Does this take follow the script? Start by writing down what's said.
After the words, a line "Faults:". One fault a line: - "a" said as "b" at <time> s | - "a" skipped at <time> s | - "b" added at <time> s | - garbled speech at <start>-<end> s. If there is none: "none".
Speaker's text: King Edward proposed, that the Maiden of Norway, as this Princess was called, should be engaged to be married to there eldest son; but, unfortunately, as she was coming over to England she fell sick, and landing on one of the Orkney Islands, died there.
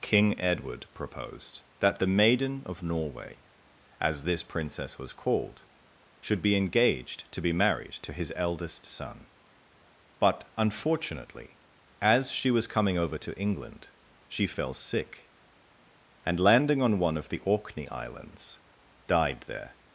King Edward proposed, that the Maiden of Norway, as this Princess was called, should be engaged to be married to his eldest son; but, unfortunately, as she was coming over to England she fell sick, and landing on one of the Orkney Islands, died there.
Faults:
- "there" said as "his" at 8.1 s